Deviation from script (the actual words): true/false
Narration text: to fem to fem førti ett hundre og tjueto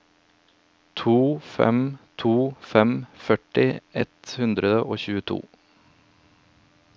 false